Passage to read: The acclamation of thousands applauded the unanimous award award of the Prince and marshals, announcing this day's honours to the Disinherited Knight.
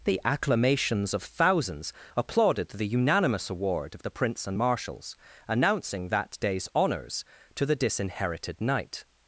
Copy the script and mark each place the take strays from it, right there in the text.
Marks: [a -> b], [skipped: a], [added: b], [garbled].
The [acclamation -> acclamations] of thousands applauded the unanimous award [skipped: award] of the Prince and marshals, announcing [this -> that] day's honours to the Disinherited Knight.